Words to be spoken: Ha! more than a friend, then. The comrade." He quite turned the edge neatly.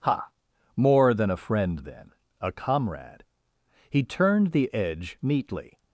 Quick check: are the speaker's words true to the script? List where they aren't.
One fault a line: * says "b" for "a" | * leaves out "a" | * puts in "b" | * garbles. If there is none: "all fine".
* says "A" for "The"
* leaves out "quite"